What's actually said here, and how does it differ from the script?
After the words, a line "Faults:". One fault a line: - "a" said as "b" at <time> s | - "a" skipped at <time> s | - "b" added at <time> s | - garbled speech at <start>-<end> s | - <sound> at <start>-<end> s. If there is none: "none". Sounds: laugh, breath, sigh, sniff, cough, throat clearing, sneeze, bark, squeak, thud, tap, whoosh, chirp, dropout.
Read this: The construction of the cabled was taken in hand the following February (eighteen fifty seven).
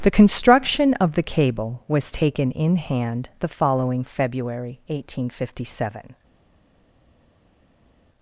The construction of the cable was taken in hand the following February (eighteen fifty seven).
Faults:
- "cabled" said as "cable" at 1.2 s